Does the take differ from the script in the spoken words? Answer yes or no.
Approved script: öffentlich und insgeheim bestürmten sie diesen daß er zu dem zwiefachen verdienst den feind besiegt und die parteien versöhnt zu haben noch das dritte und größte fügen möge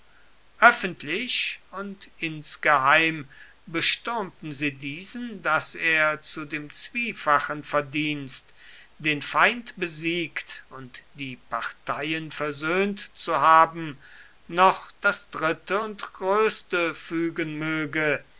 no